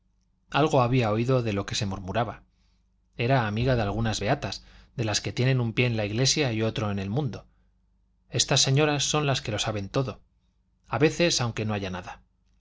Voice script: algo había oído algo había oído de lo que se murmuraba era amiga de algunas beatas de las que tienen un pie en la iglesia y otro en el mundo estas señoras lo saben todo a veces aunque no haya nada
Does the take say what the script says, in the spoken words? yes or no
no